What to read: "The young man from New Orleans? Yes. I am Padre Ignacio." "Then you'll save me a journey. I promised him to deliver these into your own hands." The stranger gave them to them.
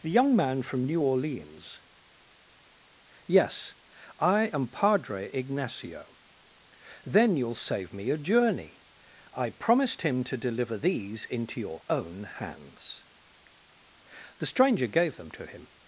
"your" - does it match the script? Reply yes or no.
yes